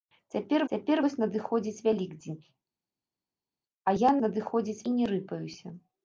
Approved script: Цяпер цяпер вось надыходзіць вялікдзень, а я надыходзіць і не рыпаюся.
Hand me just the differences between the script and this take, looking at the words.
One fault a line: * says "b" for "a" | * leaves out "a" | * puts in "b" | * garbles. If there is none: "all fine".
all fine